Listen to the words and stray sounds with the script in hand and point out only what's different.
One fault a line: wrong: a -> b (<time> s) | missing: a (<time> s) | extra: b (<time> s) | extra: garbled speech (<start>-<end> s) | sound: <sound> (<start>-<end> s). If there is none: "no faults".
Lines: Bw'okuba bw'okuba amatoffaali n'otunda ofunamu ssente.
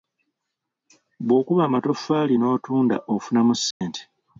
missing: bw'okuba (1.6 s)
sound: dropout (3.7-3.8 s)